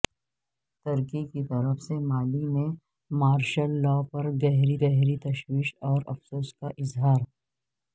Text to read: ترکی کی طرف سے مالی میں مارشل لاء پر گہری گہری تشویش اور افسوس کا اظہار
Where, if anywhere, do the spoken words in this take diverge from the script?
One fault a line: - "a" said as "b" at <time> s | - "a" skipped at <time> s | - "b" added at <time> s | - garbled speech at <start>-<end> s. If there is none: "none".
none